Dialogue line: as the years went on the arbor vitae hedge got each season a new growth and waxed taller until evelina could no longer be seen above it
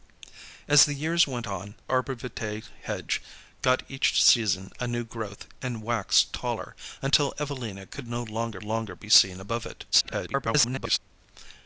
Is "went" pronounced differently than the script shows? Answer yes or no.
no